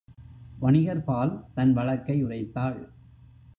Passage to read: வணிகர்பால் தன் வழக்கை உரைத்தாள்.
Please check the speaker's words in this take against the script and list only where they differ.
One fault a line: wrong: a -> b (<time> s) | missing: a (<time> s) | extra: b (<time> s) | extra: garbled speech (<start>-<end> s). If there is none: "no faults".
no faults